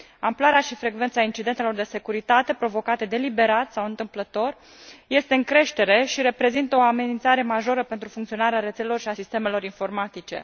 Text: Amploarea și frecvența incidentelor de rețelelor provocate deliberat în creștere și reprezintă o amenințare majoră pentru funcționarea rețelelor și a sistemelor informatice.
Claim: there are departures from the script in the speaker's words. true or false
true